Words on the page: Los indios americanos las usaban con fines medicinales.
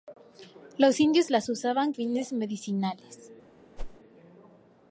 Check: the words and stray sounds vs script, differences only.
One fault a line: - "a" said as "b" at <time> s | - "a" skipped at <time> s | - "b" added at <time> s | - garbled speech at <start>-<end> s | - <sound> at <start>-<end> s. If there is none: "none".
- "americanos" skipped at 1.3 s
- "con" skipped at 1.9 s
- whoosh at 3.8-4.0 s